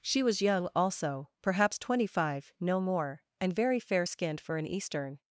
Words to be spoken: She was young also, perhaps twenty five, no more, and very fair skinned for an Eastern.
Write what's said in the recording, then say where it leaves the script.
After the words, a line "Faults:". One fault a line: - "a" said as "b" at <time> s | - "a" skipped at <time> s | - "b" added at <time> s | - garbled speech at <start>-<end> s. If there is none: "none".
She was young also, perhaps twenty five, no more, and very fair skinned for an Eastern.
Faults:
none